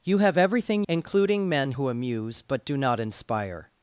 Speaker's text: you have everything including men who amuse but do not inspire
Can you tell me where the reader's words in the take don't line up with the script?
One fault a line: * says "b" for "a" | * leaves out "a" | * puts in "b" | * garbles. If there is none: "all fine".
all fine